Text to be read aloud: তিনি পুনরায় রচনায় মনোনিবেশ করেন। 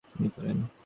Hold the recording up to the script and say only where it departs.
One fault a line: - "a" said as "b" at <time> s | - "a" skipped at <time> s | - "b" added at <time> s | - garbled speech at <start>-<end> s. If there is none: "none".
- "পুনরায় রচনায় মনোনিবেশ" skipped at 0.3 s